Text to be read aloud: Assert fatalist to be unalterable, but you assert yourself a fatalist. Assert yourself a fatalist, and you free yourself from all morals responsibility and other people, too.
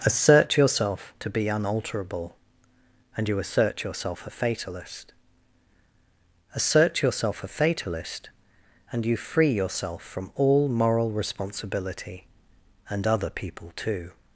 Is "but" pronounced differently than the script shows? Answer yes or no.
yes